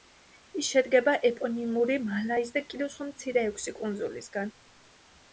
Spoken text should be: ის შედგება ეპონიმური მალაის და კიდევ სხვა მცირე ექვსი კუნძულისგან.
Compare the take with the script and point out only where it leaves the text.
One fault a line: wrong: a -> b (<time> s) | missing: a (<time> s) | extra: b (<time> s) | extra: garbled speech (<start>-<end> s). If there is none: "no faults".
no faults